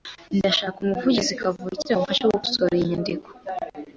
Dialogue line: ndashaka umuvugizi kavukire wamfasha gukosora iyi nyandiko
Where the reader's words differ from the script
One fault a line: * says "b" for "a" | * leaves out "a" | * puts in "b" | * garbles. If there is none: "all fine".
all fine